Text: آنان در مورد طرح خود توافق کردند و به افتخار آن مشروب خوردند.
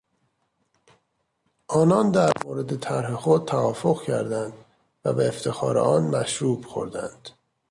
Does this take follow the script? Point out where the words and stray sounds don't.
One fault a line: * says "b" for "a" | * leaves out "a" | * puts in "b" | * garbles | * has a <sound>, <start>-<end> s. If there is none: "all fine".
all fine